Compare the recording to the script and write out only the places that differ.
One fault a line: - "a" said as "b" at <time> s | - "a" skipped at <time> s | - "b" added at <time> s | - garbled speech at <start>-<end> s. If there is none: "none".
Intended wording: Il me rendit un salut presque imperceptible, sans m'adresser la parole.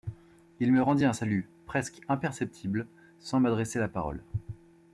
none